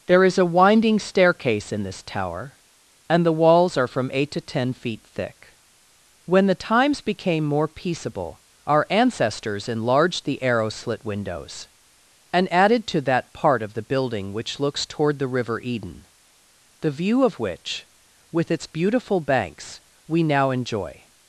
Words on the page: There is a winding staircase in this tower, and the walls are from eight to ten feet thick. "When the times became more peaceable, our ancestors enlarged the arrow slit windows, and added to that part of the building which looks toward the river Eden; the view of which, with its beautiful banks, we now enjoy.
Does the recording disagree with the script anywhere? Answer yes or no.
no